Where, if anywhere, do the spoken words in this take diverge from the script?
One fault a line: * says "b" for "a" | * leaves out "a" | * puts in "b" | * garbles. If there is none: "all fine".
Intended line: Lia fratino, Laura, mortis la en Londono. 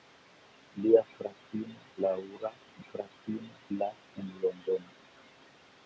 * says "fratino" for "mortis"